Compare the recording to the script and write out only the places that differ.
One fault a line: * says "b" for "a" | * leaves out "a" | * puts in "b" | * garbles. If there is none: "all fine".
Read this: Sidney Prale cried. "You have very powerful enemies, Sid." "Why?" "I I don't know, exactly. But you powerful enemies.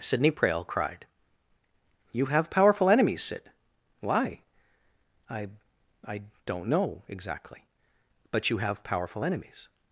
* leaves out "very"
* puts in "have"